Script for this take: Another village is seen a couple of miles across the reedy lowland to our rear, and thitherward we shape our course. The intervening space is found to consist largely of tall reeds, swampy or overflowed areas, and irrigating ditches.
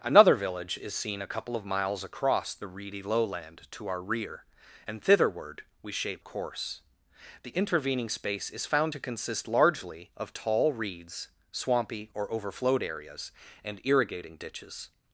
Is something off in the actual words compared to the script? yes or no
yes